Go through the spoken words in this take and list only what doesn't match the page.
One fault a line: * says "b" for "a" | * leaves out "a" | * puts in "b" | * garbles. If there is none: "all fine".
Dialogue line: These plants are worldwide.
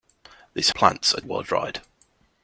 all fine